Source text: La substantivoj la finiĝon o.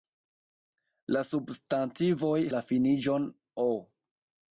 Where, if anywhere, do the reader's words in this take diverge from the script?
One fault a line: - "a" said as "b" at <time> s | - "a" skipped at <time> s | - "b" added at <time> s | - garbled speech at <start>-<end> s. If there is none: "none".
none